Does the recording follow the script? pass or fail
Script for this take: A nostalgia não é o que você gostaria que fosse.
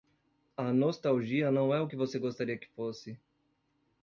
pass